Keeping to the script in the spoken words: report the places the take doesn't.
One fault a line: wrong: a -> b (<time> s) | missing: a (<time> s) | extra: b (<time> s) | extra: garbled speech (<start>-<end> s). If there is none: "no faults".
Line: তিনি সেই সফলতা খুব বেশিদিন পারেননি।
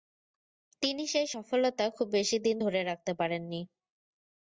extra: ধরে রাখতে (2.6 s)